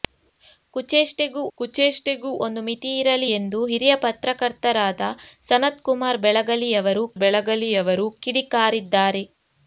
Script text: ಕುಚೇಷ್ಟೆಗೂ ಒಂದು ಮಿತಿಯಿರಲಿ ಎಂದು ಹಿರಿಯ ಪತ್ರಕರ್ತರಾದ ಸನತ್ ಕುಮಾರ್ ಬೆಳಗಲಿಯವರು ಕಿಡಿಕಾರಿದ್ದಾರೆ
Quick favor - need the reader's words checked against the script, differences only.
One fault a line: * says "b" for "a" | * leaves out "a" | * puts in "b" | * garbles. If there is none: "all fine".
* puts in "ಕುಚೇಷ್ಟೆಗೂ"
* puts in "ಬೆಳಗಲಿಯವರು"